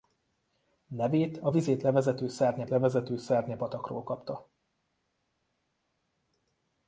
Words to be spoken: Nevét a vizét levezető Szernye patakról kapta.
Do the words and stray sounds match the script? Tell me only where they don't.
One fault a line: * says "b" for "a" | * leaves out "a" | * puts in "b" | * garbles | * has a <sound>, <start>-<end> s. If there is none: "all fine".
* puts in "levezető Szernye"